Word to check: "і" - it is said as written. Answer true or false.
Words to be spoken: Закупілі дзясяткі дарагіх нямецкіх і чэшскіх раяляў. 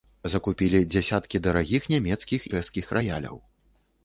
false